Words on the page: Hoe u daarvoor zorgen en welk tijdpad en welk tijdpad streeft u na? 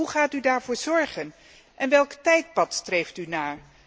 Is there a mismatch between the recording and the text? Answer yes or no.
yes